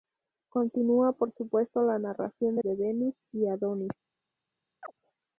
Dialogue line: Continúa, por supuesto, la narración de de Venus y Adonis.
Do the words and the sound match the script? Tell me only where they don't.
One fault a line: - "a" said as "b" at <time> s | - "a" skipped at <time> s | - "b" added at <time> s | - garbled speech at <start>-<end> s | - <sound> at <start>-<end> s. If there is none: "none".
- chirp at 4.8-4.9 s